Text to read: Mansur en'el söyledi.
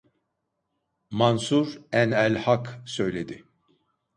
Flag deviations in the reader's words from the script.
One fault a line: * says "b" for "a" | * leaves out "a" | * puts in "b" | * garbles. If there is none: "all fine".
* puts in "hak"